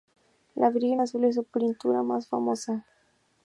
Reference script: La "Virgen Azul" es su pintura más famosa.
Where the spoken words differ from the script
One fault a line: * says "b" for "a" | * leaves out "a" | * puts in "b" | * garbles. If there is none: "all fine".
all fine